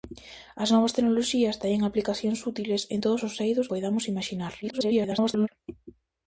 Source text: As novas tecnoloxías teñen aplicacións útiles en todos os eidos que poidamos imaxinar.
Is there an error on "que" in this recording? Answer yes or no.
yes